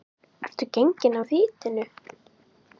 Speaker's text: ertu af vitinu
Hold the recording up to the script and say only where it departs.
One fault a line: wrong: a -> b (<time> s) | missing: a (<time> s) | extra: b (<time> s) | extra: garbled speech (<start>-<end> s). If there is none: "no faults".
extra: genginn (0.8 s)